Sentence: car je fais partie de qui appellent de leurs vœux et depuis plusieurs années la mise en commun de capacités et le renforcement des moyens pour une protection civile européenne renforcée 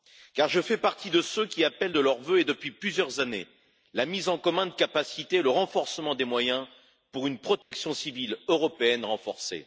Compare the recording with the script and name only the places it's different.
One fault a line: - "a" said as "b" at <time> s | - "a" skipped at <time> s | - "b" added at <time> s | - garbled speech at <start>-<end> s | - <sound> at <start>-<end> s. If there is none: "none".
- "ceux" added at 1.2 s
- dropout at 7.6-7.7 s